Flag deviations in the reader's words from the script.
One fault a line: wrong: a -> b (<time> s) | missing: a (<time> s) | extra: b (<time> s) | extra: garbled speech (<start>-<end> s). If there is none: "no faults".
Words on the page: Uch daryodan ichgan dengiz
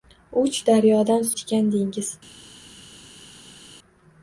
no faults